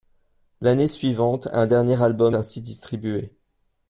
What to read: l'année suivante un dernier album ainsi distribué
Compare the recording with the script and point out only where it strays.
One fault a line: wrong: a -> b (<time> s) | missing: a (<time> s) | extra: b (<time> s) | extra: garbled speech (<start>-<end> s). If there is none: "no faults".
no faults